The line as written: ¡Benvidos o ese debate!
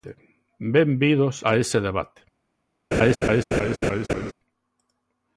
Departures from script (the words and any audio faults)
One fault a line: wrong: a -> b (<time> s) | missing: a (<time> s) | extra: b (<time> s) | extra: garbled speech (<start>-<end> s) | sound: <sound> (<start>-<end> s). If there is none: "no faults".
wrong: o -> a (1.4 s)
sound: laugh (2.9-4.3 s)